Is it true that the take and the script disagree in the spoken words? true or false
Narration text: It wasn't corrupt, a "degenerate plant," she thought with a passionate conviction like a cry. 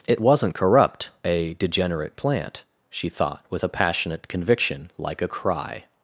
false